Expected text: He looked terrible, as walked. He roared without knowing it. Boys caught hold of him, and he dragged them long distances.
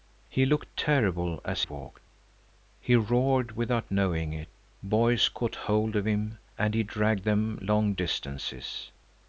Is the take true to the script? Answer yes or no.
yes